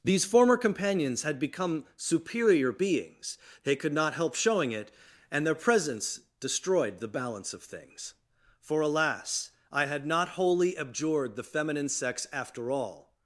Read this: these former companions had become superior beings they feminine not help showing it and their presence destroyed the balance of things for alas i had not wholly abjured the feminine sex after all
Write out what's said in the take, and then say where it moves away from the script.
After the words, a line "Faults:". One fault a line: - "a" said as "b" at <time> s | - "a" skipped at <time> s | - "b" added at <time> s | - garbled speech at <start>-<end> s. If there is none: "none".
these former companions had become superior beings they could not help showing it and their presence destroyed the balance of things for alas i had not wholly abjured the feminine sex after all
Faults:
- "feminine" said as "could" at 3.8 s